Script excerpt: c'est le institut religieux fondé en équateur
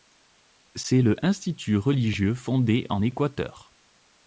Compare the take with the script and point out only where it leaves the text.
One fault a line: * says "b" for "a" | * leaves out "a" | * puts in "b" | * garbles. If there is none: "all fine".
all fine